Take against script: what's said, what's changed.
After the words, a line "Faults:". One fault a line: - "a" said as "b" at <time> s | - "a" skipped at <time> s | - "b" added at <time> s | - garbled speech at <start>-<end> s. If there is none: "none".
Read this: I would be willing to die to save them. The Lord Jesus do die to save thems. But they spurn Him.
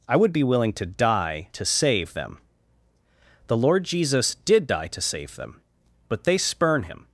I would be willing to die to save them. The Lord Jesus did die to save them. But they spurn Him.
Faults:
- "do" said as "did" at 4.3 s
- "thems" said as "them" at 5.4 s